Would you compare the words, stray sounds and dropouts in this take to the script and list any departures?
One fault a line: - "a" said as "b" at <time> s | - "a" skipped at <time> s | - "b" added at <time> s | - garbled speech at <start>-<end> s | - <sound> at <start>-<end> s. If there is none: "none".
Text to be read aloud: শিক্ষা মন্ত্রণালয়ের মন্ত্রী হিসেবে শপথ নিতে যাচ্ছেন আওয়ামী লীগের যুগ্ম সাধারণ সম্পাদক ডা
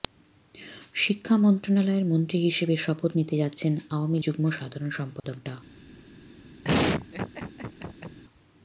- "লীগের" skipped at 4.2 s
- dropout at 5.2-5.2 s
- laugh at 6.6-8.2 s